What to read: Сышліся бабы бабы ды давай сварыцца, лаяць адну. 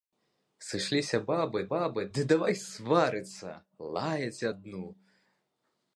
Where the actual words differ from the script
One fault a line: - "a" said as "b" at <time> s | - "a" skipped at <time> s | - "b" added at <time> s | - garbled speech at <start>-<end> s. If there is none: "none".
none